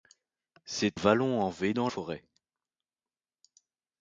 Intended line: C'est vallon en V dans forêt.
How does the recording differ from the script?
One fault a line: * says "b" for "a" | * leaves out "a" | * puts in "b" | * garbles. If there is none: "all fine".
all fine